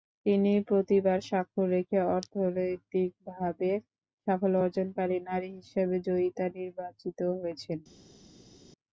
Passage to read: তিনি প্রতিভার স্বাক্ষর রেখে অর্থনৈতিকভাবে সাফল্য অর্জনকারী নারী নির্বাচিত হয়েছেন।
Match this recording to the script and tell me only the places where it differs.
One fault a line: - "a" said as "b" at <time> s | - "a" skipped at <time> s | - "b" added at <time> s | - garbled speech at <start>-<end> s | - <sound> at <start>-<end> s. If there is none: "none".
- "হিসেবে জয়িতা" added at 5.6 s